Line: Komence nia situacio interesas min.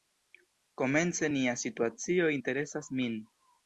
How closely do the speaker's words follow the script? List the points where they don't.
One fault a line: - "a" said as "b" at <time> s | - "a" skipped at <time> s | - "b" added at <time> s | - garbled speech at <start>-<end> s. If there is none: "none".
none